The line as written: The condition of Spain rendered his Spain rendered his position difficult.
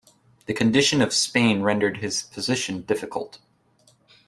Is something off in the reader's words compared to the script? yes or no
yes